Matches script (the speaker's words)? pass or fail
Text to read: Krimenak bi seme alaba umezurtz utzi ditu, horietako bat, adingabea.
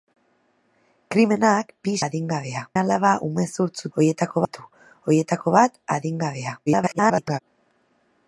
fail